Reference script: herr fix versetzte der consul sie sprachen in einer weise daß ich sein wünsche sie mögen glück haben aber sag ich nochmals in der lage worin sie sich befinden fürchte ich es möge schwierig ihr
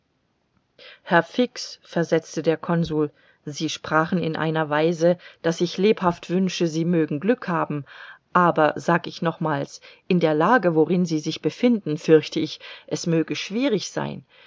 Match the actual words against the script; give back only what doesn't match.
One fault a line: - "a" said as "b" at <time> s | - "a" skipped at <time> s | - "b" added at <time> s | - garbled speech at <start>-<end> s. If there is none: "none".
- "sein" said as "lebhaft" at 5.8 s
- "ihr" said as "sein" at 13.9 s